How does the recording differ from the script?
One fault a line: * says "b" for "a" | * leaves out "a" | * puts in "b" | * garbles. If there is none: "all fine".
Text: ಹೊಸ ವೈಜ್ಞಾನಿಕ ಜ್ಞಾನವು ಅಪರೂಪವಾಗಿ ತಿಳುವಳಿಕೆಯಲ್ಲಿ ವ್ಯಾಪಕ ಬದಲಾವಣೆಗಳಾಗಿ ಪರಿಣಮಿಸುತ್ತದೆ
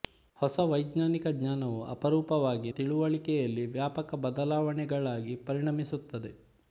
all fine